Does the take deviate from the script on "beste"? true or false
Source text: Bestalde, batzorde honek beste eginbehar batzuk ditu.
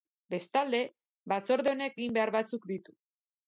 true